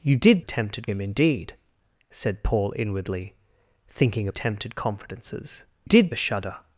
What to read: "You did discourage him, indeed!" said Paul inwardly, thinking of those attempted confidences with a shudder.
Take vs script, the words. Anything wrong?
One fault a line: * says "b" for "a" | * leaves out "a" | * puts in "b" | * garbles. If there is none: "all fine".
* says "attempted" for "discourage"
* leaves out "of those"
* says "did" for "with"